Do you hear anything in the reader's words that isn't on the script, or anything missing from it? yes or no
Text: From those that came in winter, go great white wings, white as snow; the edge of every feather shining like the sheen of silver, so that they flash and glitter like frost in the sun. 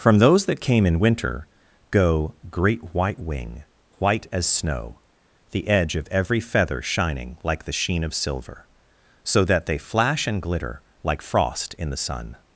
yes